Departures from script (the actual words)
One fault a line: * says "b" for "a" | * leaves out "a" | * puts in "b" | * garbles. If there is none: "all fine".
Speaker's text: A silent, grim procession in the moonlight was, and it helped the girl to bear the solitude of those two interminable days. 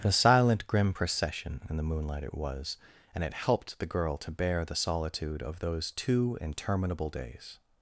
* puts in "it"